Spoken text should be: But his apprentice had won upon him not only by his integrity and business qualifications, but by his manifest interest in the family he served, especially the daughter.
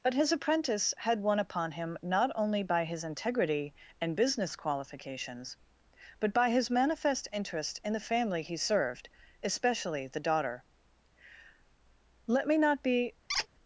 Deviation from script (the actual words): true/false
true